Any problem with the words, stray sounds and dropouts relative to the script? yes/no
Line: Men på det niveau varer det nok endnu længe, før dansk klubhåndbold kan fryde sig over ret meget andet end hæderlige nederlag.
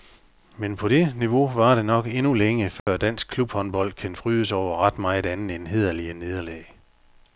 yes